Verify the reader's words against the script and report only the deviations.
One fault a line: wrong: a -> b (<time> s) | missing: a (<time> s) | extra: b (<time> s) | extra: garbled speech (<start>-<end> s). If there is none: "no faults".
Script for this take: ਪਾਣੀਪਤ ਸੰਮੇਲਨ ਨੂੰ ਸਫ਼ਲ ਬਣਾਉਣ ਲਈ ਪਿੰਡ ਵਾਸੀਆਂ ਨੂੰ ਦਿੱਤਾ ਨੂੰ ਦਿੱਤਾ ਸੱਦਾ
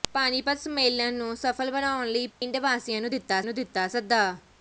no faults